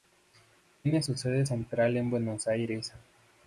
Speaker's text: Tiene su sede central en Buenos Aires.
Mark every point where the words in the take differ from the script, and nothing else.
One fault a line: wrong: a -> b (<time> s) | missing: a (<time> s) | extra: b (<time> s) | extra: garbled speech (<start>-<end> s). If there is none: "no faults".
no faults